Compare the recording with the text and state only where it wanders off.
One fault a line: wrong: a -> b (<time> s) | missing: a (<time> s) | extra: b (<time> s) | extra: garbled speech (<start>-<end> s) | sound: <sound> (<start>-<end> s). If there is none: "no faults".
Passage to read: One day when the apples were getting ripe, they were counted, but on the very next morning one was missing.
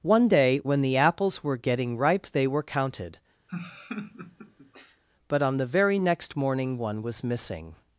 sound: laugh (3.5-5.0 s)